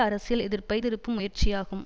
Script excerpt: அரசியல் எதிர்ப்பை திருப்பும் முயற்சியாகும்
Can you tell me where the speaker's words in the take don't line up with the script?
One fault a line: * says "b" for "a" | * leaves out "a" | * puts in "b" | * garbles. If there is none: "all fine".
all fine